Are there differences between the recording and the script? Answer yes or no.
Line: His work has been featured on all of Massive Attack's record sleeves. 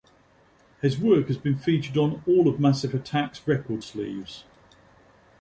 no